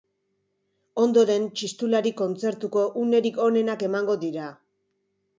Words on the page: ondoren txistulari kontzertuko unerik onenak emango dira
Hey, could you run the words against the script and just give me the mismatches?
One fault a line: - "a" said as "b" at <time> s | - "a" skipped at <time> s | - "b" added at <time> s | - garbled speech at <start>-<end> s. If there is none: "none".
none